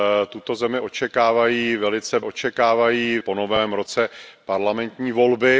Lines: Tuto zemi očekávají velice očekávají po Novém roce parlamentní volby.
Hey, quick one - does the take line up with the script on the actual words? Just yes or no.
yes